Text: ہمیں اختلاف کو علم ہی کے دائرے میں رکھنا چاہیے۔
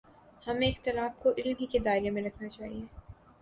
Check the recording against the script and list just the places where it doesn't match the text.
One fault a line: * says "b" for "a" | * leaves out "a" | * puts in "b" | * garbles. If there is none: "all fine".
all fine